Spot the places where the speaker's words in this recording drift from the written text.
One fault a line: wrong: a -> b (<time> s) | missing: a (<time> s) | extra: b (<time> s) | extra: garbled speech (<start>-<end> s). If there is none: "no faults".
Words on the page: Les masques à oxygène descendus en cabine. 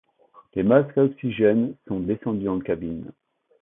extra: sont (1.9 s)